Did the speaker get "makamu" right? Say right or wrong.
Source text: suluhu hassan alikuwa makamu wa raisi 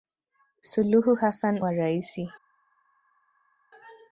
wrong